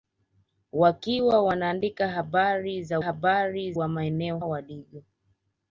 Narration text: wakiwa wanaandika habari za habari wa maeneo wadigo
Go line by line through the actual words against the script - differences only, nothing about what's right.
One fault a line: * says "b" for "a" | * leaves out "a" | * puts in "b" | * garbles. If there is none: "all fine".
all fine